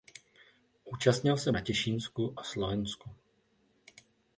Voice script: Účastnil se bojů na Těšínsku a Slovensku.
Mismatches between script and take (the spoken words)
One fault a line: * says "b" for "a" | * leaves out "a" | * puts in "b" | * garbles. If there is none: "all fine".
* leaves out "bojů"